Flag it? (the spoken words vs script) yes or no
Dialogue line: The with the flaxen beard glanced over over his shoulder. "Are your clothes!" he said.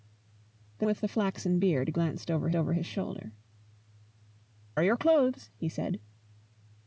no